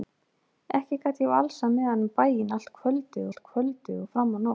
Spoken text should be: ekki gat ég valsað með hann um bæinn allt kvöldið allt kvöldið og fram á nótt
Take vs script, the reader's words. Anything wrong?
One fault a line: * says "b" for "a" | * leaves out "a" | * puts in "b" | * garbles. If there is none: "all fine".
all fine